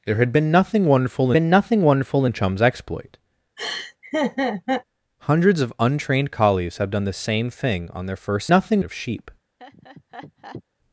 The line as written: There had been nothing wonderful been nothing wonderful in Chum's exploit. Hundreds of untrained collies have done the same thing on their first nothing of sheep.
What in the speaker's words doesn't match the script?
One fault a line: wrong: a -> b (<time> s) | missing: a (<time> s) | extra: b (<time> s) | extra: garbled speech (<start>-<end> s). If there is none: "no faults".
no faults